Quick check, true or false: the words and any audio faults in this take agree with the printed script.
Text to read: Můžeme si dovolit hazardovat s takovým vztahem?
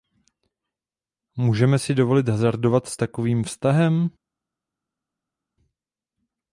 true